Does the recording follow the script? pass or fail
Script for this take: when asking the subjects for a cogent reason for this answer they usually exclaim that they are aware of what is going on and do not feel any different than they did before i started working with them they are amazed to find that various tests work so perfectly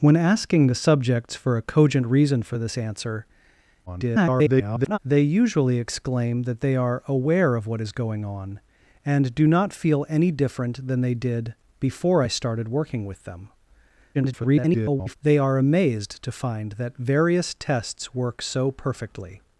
fail